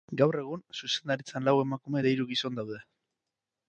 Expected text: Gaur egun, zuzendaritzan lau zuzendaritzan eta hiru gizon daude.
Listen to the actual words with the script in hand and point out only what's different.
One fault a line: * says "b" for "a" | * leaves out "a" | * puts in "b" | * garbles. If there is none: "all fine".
* says "emakume" for "zuzendaritzan"